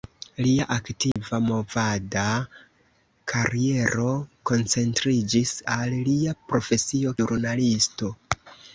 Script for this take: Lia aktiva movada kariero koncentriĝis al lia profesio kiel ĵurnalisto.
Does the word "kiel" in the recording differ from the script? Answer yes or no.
yes